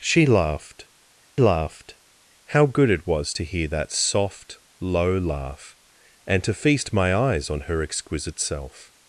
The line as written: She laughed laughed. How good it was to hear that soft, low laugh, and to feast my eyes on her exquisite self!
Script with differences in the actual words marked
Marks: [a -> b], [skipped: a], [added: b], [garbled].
She laughed laughed. How good it was to hear that soft, low laugh, and to feast my eyes on her exquisite self!